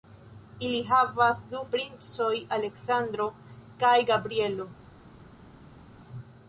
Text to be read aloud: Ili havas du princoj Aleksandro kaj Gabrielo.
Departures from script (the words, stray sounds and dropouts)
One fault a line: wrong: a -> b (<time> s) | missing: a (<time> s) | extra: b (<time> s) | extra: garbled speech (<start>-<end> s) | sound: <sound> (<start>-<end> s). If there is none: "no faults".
no faults